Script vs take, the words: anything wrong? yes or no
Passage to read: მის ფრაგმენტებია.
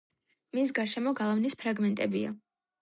yes